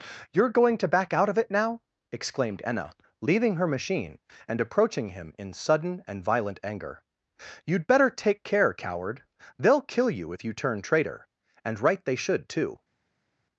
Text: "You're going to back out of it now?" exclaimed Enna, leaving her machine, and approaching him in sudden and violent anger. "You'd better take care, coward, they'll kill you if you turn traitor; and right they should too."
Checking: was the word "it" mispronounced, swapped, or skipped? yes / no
no